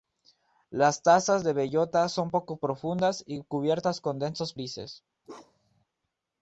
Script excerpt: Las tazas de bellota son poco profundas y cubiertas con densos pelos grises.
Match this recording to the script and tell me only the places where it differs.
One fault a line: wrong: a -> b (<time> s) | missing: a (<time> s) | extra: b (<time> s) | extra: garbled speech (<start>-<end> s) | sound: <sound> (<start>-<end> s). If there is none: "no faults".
missing: pelos (4.5 s)
sound: bark (5.2-5.8 s)